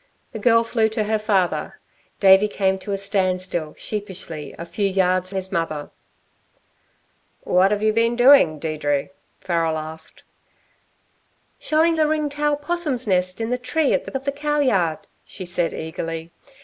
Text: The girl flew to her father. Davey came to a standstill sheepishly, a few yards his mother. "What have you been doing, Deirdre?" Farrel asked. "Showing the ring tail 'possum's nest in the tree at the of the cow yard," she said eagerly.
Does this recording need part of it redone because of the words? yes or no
no